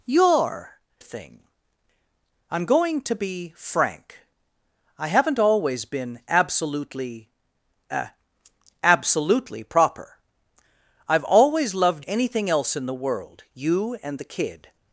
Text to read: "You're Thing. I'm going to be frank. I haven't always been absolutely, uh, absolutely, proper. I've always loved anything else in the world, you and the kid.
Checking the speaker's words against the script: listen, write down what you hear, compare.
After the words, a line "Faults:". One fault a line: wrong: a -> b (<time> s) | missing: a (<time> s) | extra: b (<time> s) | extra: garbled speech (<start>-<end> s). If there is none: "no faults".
"You're Thing. I'm going to be frank. I haven't always been absolutely, uh, absolutely, proper. I've always loved anything else in the world, you and the kid.
Faults:
no faults